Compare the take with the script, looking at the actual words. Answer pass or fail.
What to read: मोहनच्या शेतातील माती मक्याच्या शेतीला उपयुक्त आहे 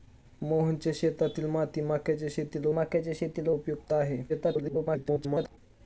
fail